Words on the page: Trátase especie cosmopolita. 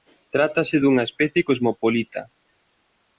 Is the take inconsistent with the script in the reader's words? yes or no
yes